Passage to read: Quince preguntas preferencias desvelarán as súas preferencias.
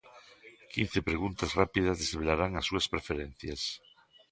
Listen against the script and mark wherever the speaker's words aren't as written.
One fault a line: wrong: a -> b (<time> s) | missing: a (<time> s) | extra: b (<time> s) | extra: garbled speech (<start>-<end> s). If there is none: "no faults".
wrong: preferencias -> rápidas (1.6 s)